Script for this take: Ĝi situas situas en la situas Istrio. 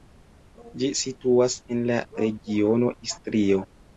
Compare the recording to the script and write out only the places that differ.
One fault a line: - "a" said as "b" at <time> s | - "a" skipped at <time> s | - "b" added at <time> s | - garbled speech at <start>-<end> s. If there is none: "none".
- "situas" skipped at 1.6 s
- "situas" said as "regiono" at 2.2 s